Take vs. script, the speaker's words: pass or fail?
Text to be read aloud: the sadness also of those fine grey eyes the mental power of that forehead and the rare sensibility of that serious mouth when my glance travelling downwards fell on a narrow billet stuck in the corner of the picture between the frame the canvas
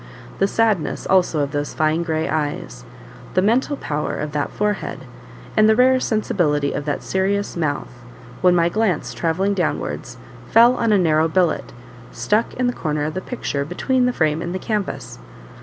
fail